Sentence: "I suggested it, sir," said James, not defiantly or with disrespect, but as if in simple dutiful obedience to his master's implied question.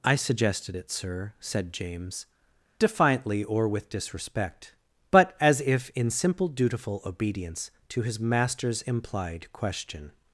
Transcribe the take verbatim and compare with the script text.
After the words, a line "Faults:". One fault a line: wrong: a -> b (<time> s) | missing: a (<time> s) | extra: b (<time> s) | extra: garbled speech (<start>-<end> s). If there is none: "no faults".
"I suggested it, sir," said James, defiantly or with disrespect, but as if in simple dutiful obedience to his master's implied question.
Faults:
missing: not (2.2 s)